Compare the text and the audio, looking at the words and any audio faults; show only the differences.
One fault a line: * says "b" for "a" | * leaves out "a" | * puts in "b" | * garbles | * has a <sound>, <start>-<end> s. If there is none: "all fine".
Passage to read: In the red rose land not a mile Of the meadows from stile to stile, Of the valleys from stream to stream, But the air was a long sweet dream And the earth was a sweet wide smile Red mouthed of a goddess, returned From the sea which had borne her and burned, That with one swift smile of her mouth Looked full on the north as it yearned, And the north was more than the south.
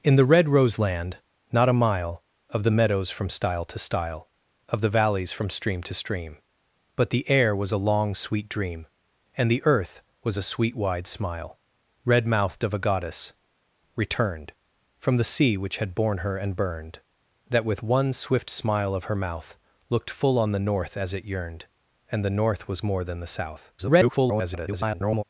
* garbles